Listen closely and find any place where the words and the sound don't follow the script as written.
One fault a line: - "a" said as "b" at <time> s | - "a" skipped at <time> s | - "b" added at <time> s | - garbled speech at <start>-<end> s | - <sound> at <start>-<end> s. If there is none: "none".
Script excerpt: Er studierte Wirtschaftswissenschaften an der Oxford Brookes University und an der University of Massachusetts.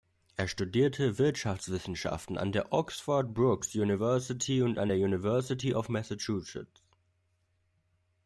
none